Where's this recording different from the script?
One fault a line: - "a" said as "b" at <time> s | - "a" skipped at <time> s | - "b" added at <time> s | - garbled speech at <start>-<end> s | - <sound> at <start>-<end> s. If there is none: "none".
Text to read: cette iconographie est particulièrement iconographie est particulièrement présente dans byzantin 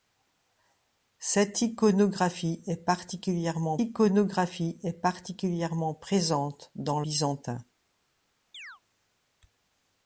- chirp at 8.5-8.8 s